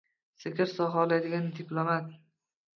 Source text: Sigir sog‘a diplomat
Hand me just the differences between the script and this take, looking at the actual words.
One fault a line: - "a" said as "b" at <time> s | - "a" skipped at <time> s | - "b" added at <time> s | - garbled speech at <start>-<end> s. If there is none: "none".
- "oladigan" added at 1.0 s